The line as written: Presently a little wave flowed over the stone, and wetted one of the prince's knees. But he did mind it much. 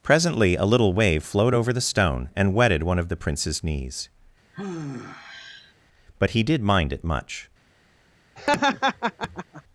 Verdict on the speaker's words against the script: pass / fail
pass